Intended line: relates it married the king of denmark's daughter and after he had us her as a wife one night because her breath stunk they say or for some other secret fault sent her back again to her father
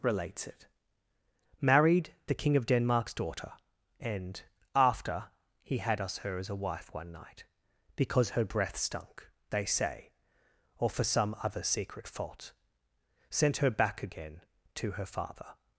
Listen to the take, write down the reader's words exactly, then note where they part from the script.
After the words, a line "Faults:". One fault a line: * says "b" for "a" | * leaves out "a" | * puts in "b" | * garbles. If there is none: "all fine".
relates it married the king of denmark's daughter and after he had us her as a wife one night because her breath stunk they say or for some other secret fault sent her back again to her father
Faults:
all fine